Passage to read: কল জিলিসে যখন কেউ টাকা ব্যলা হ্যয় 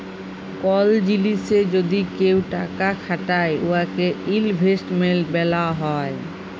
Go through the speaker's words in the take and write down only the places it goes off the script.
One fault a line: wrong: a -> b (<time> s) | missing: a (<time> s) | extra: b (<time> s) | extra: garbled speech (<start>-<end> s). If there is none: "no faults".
wrong: যখন -> যদি (1.7 s)
extra: খাটায় উয়াকে ইলভেস্টমেল্ট (3.0 s)